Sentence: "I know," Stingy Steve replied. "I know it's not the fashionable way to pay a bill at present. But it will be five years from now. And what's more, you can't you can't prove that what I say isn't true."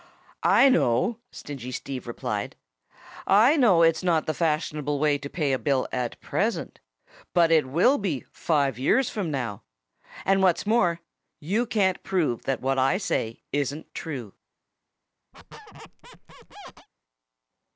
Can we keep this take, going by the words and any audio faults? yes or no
no